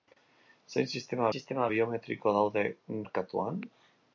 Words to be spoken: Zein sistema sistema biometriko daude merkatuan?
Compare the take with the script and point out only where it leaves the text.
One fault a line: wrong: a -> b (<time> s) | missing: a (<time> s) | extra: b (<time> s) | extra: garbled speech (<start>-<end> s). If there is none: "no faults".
no faults